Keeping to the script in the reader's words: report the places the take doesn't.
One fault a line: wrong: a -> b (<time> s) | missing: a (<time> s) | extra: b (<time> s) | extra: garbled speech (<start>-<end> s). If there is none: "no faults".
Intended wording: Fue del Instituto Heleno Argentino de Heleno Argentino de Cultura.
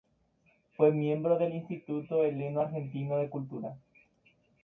extra: miembro (0.9 s)
missing: Heleno Argentino de (3.3 s)